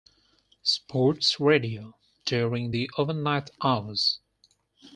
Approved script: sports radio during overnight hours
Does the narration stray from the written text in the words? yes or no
yes